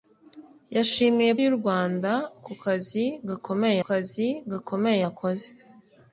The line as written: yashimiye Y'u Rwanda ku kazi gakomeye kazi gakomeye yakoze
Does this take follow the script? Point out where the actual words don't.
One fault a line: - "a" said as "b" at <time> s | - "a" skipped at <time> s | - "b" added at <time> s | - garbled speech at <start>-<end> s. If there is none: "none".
none